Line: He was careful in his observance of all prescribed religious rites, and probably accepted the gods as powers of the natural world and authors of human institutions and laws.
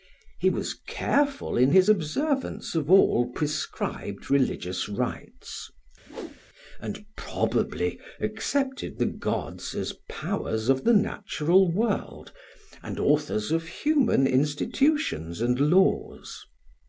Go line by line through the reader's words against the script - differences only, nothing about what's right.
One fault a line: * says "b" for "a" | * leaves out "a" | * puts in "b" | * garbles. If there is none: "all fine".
all fine